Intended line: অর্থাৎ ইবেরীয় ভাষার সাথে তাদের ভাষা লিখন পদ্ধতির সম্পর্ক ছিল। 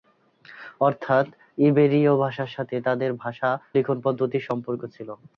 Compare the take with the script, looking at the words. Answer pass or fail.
pass